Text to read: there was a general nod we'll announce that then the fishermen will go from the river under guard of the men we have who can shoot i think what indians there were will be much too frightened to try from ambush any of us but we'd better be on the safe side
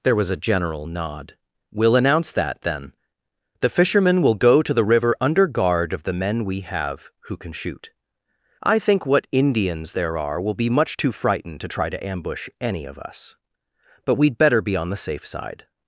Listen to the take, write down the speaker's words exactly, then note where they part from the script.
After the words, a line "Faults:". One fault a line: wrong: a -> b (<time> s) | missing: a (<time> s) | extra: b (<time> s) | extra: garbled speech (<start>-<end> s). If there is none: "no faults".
there was a general nod we'll announce that then the fishermen will go to the river under guard of the men we have who can shoot i think what indians there are will be much too frightened to try to ambush any of us but we'd better be on the safe side
Faults:
wrong: from -> to (4.6 s)
wrong: were -> are (10.2 s)
wrong: from -> to (11.9 s)